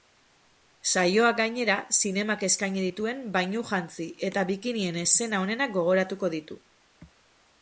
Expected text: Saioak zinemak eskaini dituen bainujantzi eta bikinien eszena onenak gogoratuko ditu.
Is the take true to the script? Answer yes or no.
no